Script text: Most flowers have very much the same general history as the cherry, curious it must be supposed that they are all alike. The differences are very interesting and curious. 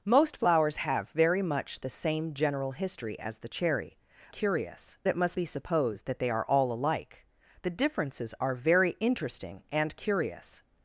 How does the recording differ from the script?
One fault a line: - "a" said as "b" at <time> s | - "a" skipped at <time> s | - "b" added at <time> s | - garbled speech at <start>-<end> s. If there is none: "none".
none